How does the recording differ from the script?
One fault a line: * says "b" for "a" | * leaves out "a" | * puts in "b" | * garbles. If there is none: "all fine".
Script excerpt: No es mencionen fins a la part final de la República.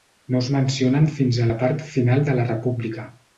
all fine